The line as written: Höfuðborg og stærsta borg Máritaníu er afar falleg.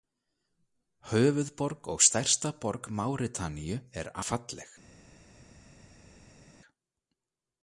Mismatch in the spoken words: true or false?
true